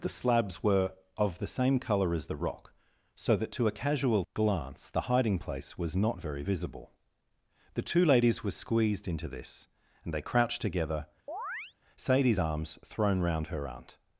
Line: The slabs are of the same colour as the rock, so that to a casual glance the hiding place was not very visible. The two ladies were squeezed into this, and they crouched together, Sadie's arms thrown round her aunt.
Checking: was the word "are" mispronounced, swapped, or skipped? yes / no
yes